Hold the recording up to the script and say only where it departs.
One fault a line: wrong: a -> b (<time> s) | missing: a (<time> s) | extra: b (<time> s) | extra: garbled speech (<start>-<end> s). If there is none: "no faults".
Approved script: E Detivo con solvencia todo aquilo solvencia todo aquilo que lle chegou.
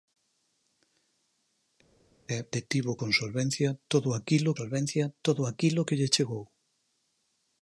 no faults